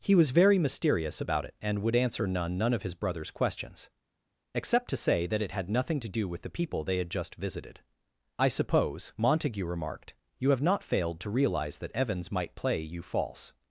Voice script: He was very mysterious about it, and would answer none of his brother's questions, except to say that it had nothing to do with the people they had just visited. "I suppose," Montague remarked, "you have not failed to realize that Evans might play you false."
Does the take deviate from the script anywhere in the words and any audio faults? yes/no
yes